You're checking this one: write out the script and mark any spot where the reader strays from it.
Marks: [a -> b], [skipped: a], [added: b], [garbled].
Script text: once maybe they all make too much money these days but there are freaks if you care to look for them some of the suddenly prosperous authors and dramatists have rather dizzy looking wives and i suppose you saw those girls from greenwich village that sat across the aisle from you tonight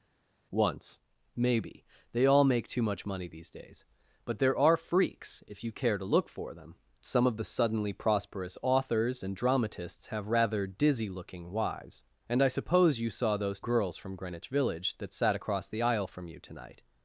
once maybe they all make too much money these days but there are freaks if you care to look for them some of the suddenly prosperous authors and dramatists have rather dizzy looking wives and i suppose you saw those girls from greenwich village that sat across the aisle from you tonight